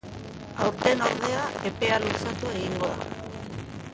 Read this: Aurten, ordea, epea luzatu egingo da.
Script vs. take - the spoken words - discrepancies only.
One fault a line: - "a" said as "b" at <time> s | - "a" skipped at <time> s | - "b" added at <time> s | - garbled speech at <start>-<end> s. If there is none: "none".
none